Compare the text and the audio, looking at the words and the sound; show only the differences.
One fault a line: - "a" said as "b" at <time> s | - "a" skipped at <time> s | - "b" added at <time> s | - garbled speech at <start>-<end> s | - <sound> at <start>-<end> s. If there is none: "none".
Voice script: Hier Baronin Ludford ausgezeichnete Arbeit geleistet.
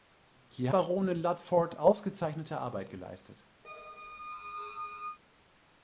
- squeak at 3.6-5.2 s